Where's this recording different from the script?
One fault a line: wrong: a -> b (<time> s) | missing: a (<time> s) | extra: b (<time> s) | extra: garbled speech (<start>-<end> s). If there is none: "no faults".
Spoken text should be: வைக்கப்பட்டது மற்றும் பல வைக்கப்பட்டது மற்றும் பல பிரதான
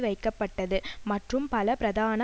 missing: வைக்கப்பட்டது மற்றும் பல (1.8 s)